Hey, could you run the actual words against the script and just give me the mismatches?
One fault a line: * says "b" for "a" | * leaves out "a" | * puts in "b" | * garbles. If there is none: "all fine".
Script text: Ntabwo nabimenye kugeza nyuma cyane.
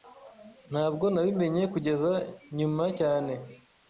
all fine